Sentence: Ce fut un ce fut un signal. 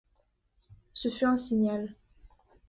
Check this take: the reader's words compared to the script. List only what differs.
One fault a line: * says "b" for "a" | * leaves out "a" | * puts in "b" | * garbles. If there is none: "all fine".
* leaves out "ce fut un"